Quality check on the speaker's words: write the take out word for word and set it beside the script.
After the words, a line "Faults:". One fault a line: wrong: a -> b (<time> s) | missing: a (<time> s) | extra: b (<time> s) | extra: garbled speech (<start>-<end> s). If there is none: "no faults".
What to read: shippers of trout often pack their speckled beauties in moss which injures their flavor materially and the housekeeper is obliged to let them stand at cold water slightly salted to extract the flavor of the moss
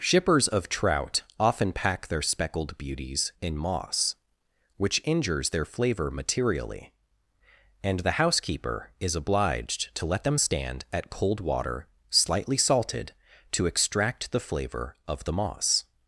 shippers of trout often pack their speckled beauties in moss which injures their flavor materially and the housekeeper is obliged to let them stand at cold water slightly salted to extract the flavor of the moss
Faults:
no faults